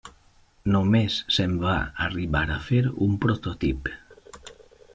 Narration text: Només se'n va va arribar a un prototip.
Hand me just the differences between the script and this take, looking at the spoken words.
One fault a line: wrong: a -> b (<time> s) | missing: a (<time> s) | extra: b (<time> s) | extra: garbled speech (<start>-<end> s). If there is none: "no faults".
missing: va (1.8 s)
extra: fer (2.7 s)